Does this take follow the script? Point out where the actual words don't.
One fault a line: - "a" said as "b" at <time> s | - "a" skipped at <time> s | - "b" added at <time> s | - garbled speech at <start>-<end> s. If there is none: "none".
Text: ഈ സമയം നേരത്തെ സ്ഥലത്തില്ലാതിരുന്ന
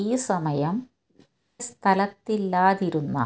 - "നേരത്തെ" skipped at 0.8 s